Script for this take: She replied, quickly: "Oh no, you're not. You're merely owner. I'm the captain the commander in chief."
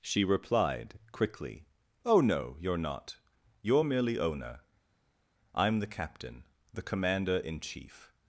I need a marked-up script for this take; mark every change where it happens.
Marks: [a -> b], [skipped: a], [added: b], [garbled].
She replied, quickly: "Oh no, you're not. You're merely owner. I'm the captain the commander in chief."